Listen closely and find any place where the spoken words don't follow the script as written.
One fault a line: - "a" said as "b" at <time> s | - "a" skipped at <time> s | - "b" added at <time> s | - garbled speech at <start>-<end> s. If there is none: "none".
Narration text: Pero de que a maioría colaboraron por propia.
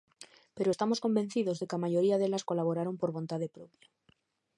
- "estamos convencidos" added at 0.7 s
- "delas" added at 2.2 s
- "vontade" added at 3.2 s